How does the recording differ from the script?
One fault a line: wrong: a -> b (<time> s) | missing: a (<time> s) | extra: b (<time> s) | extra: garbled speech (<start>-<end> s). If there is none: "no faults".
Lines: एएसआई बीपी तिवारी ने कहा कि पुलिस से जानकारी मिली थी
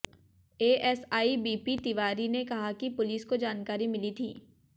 wrong: से -> को (3.2 s)